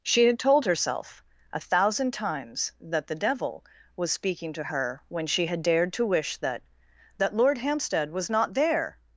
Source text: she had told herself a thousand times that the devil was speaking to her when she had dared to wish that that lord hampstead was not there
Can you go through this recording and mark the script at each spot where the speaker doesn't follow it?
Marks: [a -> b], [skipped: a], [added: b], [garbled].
she had told herself a thousand times that the devil was speaking to her when she had dared to wish that that lord hampstead was not there